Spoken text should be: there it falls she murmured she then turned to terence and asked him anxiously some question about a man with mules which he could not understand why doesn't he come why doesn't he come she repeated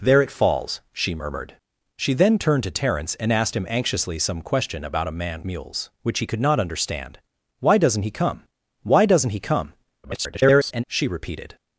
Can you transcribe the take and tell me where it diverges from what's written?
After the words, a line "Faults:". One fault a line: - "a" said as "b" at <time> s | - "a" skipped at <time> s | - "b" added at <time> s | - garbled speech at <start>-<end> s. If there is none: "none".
there it falls she murmured she then turned to terence and asked him anxiously some question about a man mules which he could not understand why doesn't he come why doesn't he come [garbled] she repeated
Faults:
- "with" skipped at 5.4 s
- garbled speech at 10.0-10.8 s